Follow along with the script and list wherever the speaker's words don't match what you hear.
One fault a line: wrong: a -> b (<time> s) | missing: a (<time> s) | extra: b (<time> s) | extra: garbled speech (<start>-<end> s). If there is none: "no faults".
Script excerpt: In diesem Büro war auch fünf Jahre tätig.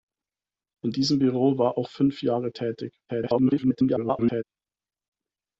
extra: garbled speech (3.1-4.4 s)